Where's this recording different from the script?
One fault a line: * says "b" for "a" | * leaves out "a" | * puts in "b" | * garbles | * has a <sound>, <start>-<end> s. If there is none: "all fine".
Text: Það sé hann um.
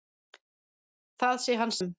all fine